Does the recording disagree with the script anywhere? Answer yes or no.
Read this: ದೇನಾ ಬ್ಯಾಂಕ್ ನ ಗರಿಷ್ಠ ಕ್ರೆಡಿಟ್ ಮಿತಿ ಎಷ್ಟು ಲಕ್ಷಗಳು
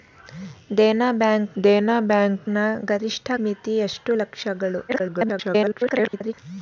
yes